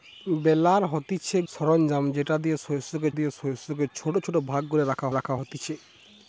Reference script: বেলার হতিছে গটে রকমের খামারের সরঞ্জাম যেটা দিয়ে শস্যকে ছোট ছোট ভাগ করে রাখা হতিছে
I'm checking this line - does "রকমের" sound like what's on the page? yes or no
no